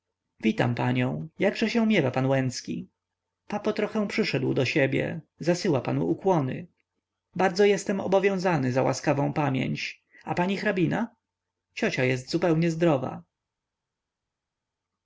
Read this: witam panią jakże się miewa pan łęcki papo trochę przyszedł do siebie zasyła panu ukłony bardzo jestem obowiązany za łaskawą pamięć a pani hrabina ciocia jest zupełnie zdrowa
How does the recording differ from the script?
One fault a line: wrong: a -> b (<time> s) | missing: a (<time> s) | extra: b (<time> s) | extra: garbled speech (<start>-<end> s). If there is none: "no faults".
no faults